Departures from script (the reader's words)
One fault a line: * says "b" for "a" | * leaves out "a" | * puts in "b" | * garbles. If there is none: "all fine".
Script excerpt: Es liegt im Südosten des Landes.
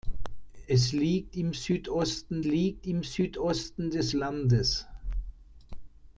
* puts in "liegt im Südosten"